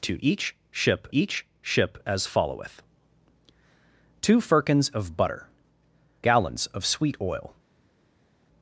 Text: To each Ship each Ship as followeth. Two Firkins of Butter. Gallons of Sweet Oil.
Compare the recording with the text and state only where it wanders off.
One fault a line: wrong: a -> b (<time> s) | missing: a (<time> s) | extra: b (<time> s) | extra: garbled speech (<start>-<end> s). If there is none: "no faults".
no faults